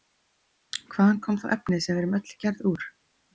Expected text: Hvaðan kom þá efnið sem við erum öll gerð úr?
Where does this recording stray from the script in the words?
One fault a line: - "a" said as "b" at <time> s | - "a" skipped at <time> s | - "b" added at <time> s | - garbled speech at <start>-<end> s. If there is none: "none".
none